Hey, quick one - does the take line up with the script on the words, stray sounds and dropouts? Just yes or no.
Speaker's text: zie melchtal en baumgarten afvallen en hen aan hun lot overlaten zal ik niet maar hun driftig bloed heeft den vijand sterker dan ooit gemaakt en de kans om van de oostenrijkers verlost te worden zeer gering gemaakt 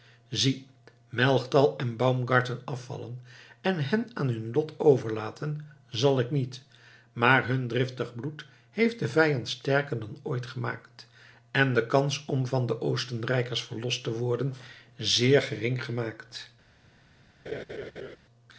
no